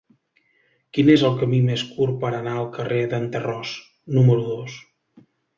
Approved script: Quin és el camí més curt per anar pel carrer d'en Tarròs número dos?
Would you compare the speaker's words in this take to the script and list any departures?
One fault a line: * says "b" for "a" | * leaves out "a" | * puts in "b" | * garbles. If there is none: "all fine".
* says "al" for "pel"